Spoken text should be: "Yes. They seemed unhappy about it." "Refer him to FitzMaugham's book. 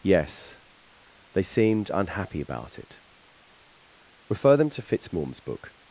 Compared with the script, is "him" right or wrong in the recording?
wrong